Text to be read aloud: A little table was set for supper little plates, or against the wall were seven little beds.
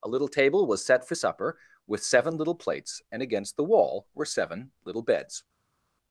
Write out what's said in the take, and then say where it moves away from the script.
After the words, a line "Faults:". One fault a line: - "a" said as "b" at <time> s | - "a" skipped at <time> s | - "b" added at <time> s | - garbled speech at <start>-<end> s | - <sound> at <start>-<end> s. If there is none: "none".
A little table was set for supper with seven little plates, and against the wall were seven little beds.
Faults:
- "with seven" added at 1.8 s
- "or" said as "and" at 3.1 s